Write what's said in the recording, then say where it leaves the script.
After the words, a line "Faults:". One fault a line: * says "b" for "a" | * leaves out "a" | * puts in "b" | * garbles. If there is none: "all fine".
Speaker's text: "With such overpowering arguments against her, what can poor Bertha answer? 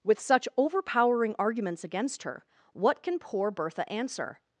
"With such overpowering arguments against her, what can poor Bertha answer?
Faults:
all fine